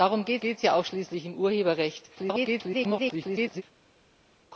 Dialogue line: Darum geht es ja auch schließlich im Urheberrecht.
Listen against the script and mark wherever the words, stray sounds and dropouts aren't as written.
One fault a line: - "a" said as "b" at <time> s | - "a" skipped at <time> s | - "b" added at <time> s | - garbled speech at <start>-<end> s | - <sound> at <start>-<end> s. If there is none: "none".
- "geht" added at 0.4 s
- garbled speech at 2.2-3.6 s